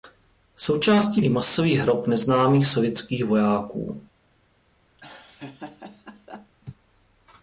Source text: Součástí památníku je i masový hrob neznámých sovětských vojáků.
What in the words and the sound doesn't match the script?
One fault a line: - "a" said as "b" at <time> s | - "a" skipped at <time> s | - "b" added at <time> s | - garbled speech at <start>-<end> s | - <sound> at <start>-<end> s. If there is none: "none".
- "památníku je" skipped at 1.2 s
- laugh at 5.0-6.5 s